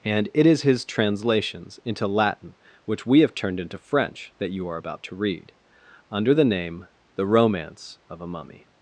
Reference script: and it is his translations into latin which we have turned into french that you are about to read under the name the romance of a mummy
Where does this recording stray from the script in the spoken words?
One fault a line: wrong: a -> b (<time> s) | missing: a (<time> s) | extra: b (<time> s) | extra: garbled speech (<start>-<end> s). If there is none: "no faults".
no faults